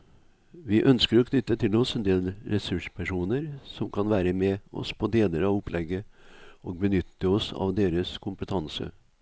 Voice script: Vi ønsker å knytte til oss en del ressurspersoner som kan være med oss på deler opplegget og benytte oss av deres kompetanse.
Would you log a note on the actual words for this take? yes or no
yes